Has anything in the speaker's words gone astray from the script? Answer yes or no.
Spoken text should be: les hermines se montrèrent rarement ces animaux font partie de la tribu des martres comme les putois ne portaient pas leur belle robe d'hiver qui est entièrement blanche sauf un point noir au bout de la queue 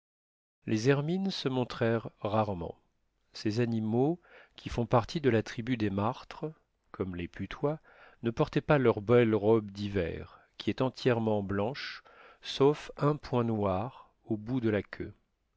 yes